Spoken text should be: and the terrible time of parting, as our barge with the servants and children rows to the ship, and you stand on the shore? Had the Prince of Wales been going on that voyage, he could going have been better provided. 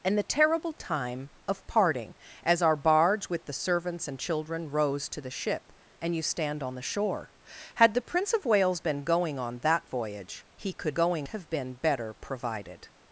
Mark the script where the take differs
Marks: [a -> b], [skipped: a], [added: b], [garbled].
and the terrible time of parting, as our barge with the servants and children rows to the ship, and you stand on the shore? Had the Prince of Wales been going on that voyage, he could going have been better provided.